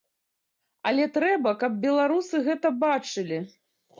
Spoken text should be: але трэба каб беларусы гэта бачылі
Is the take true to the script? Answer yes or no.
yes